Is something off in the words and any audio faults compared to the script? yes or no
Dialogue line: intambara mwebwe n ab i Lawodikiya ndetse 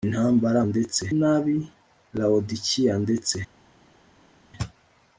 yes